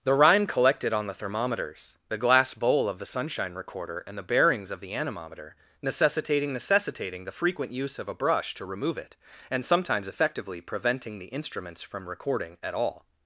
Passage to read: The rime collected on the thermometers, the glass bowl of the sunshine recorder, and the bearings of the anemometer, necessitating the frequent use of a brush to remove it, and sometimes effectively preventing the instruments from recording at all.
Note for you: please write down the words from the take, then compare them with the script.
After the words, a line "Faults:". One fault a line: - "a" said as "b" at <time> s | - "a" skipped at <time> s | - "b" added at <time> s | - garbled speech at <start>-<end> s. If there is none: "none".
The rime collected on the thermometers, the glass bowl of the sunshine recorder, and the bearings of the anemometer, necessitating necessitating the frequent use of a brush to remove it, and sometimes effectively preventing the instruments from recording at all.
Faults:
- "necessitating" added at 6.5 s